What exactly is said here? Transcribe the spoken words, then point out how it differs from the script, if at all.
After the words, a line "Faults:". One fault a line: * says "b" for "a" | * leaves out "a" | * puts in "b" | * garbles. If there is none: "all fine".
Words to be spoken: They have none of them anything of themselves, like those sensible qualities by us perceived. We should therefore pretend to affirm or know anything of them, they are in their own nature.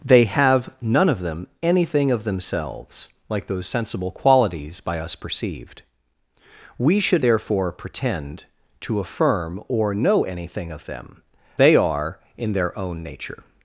They have none of them anything of themselves, like those sensible qualities by us perceived. We should therefore pretend to affirm or know anything of them, they are in their own nature.
Faults:
all fine